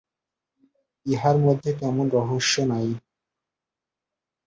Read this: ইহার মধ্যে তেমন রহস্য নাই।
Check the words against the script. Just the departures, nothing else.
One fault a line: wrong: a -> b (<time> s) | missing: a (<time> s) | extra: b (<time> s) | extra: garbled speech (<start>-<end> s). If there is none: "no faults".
no faults